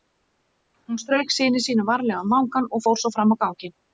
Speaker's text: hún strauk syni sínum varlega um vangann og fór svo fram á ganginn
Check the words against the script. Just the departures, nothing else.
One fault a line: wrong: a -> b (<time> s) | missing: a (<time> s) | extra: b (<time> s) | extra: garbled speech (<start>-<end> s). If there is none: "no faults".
no faults